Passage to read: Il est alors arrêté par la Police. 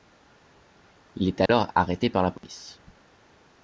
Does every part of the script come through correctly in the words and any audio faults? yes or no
no